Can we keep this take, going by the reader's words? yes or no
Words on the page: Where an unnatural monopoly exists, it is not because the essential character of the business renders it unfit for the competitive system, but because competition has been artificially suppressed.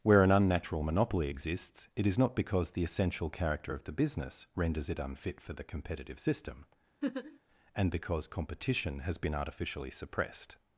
no